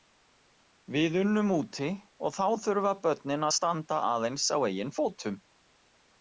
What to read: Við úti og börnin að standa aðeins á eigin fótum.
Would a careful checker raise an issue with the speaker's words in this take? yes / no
yes